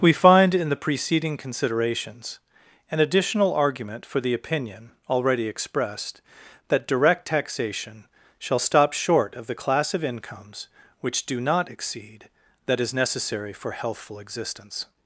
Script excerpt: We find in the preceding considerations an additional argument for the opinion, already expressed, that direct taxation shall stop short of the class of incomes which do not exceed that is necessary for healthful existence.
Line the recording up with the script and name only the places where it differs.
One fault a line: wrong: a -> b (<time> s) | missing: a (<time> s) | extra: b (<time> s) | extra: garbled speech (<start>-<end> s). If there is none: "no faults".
no faults